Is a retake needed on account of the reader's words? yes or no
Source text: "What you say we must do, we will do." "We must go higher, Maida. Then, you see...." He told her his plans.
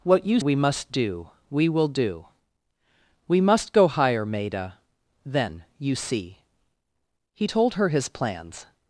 yes